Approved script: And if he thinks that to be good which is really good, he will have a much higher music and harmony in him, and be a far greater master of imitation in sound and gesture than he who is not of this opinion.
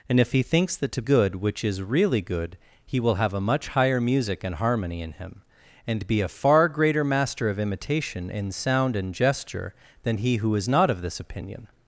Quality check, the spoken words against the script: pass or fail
fail